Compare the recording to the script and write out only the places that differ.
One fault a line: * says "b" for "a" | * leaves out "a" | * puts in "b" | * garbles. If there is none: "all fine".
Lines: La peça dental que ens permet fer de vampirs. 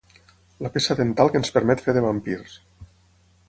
all fine